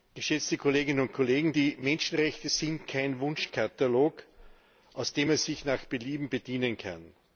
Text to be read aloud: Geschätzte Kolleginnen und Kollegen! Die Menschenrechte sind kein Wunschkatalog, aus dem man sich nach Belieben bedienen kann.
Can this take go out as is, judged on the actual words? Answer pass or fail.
pass